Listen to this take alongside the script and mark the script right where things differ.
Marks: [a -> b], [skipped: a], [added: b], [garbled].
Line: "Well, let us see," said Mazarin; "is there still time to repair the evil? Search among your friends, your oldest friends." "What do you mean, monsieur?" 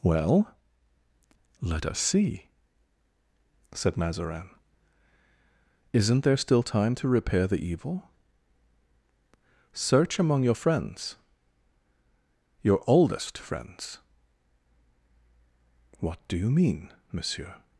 "Well, let us see," said Mazarin; ["is -> isn't] there still time to repair the evil? Search among your friends, your oldest friends." "What do you mean, monsieur?"